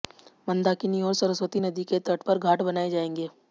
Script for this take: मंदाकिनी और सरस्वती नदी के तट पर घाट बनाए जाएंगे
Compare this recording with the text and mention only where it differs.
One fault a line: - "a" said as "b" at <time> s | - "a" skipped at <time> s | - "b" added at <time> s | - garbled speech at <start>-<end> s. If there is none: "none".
none